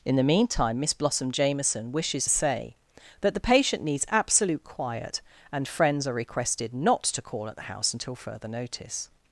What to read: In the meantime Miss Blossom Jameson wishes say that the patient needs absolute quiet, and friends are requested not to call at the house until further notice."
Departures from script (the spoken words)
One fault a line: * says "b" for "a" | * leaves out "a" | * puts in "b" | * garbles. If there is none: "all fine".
all fine